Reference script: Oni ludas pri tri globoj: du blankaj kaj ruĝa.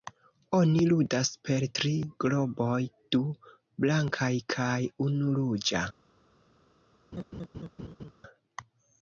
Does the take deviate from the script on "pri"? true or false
true